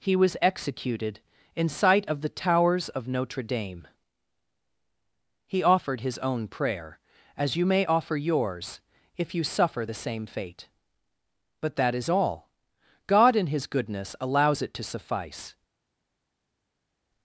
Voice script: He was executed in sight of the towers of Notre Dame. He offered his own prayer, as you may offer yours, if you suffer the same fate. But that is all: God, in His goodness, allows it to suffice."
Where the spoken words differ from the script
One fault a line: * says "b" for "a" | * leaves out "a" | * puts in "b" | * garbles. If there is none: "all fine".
all fine